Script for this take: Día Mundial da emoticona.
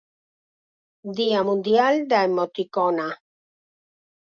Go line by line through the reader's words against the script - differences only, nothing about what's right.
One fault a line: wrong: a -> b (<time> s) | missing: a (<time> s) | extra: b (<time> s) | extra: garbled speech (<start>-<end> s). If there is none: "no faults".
no faults